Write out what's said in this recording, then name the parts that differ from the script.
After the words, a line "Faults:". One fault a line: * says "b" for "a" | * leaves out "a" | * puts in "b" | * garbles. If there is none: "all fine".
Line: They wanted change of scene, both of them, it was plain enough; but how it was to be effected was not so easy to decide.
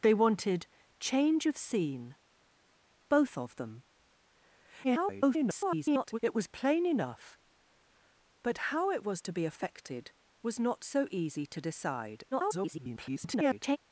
They wanted change of scene, both of them, [garbled] it was plain enough; but how it was to be effected was not so easy to decide. [garbled]
Faults:
* garbles
* garbles